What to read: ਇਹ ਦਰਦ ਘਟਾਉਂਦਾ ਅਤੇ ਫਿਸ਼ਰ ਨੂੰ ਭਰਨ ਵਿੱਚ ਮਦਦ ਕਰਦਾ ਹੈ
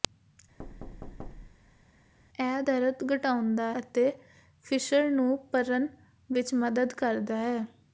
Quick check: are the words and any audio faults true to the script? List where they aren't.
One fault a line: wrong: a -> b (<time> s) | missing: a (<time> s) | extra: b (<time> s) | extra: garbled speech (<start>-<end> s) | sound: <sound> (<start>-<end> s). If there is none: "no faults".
sound: thud (0.6-1.9 s)